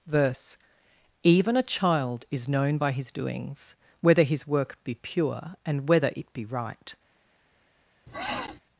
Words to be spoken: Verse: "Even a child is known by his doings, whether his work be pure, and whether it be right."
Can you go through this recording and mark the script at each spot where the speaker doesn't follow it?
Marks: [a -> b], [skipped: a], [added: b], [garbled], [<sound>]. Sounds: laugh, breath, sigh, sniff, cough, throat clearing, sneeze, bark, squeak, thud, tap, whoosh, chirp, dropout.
Verse: "Even a child is known by his doings, whether his work be pure, and whether it be right." [sniff]